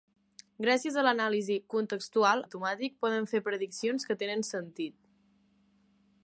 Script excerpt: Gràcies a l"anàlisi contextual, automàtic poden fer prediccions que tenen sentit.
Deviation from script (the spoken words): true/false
false